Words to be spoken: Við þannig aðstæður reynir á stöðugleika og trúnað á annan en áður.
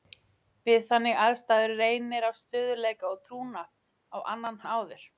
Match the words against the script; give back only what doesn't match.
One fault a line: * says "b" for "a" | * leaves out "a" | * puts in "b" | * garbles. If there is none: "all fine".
all fine